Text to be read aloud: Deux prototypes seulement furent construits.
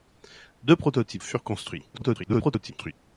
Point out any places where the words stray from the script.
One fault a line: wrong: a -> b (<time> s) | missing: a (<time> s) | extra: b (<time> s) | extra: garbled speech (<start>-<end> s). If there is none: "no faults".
missing: seulement (1.2 s)
extra: garbled speech (1.9-2.9 s)